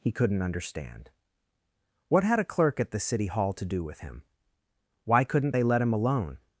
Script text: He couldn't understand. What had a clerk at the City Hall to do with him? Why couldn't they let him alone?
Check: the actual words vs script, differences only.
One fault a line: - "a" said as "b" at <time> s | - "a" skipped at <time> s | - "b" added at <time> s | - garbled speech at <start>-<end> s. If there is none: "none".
none